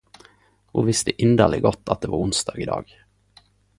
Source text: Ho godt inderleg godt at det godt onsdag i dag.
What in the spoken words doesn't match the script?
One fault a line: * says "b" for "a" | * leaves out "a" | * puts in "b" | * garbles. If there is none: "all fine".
* says "visste" for "godt"
* says "var" for "godt"